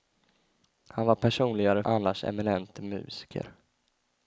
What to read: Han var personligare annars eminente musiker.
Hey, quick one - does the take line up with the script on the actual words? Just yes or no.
yes